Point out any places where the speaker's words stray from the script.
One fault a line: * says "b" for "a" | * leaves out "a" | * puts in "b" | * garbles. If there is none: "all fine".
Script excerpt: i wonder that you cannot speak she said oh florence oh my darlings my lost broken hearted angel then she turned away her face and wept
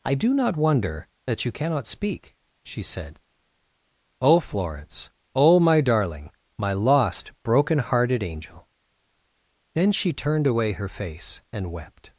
* puts in "do not"
* says "darling" for "darlings"